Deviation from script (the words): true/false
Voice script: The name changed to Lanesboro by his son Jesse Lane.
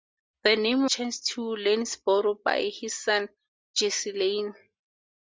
false